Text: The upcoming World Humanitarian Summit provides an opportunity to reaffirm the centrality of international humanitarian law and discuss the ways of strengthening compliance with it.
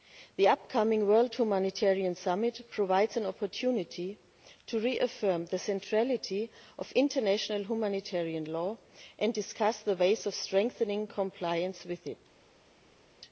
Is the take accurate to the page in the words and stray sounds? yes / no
yes